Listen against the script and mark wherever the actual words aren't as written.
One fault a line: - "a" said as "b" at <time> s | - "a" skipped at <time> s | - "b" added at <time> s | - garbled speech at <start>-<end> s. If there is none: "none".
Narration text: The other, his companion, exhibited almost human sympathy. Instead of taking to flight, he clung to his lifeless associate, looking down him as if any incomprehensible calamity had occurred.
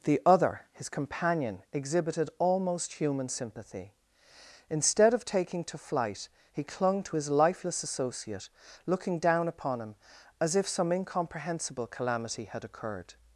- "upon" added at 9.5 s
- "any" said as "some" at 10.7 s